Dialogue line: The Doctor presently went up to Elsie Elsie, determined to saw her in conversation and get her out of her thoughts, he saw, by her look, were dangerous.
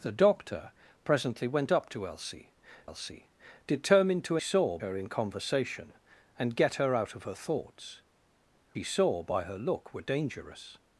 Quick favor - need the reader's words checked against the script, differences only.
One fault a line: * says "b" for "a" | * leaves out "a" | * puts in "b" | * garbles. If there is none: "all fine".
all fine